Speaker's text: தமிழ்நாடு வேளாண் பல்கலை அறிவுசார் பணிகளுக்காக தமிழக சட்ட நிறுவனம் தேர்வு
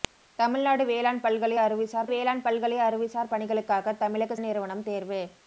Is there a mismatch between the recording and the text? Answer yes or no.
yes